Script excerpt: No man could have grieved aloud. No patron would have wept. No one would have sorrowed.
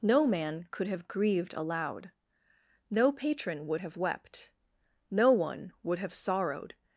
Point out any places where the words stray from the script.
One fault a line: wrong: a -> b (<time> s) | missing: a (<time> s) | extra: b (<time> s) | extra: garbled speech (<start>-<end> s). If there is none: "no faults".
no faults